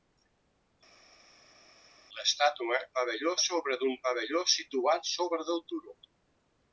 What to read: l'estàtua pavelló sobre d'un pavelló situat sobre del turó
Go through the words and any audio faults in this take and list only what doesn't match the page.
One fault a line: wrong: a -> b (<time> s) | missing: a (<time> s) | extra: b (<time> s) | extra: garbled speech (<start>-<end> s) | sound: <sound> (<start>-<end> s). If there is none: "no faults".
no faults